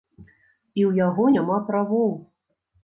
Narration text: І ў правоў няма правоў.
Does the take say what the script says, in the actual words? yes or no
no